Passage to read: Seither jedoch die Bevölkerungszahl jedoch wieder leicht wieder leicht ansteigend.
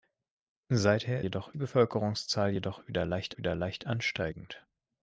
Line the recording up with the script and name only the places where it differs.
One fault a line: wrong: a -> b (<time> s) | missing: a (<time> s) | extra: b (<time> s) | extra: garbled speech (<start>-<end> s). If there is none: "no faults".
no faults